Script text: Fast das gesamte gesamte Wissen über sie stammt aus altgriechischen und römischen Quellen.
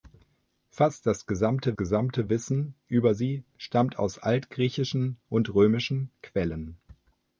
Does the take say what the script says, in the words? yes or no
yes